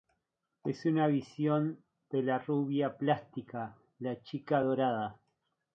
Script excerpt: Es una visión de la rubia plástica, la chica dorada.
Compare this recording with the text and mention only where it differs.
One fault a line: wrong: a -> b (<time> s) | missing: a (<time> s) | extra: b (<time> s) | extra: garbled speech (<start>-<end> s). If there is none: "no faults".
no faults